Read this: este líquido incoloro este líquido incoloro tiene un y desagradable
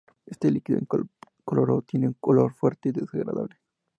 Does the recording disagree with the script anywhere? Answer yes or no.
yes